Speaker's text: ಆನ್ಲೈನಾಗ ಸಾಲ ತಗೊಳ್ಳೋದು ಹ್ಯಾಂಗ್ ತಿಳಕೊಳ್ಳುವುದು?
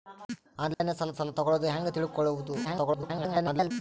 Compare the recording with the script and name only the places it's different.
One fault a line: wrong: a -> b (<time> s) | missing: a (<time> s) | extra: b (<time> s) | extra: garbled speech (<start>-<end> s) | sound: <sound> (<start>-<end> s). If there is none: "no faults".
sound: dropout (0.7-0.8 s)
extra: ಸಾಲ (1.2 s)
extra: garbled speech (2.6-3.7 s)